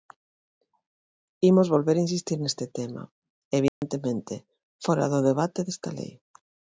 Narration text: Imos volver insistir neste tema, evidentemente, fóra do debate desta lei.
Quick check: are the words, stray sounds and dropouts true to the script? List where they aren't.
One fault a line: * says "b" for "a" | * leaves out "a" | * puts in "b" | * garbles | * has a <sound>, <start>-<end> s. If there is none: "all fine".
* has a dropout, 3.7-3.8 s